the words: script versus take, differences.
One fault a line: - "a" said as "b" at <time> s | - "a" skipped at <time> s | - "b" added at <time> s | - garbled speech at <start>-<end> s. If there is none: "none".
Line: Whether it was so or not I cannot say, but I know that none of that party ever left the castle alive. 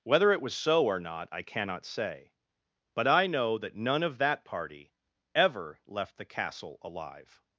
none